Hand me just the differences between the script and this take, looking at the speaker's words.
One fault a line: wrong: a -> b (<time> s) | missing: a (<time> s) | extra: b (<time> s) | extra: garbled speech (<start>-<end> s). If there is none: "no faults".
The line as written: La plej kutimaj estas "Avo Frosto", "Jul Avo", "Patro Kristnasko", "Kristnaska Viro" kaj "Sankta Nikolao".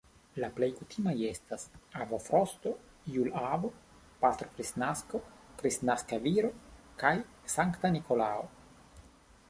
no faults